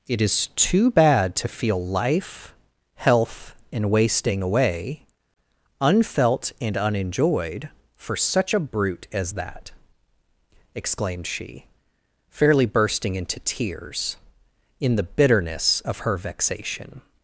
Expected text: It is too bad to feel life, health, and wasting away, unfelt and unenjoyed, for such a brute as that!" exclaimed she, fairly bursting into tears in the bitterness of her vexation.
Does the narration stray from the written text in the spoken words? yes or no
no